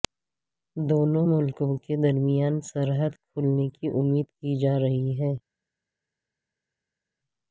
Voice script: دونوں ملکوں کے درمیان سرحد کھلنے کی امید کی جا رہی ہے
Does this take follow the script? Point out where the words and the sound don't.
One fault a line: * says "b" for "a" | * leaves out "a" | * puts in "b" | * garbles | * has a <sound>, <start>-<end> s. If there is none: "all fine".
all fine